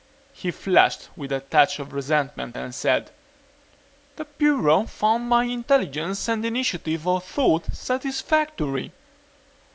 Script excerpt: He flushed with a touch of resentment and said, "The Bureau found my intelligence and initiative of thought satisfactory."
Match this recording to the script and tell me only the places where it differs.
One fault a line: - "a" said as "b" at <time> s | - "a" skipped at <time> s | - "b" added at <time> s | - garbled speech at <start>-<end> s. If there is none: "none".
none